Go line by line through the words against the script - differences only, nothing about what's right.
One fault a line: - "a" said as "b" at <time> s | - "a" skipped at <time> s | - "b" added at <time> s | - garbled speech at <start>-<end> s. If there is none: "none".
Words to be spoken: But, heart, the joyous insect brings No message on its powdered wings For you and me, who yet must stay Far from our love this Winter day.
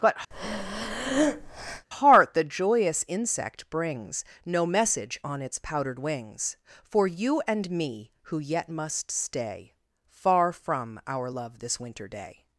none